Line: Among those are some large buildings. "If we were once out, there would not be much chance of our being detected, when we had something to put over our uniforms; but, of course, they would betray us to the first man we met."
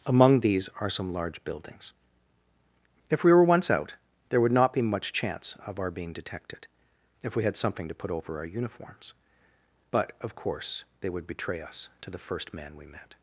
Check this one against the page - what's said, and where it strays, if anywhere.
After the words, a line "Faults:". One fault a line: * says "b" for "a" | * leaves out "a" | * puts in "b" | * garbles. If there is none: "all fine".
Among these are some large buildings. "If we were once out, there would not be much chance of our being detected, if we had something to put over our uniforms; but, of course, they would betray us to the first man we met."
Faults:
* says "these" for "those"
* says "if" for "when"